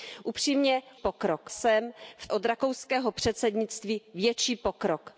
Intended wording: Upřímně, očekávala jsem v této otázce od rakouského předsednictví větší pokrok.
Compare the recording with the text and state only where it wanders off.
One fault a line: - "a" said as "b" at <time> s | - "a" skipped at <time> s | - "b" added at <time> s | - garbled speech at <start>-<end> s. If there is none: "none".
- "očekávala" said as "pokrok" at 1.0 s
- "této otázce" skipped at 2.3 s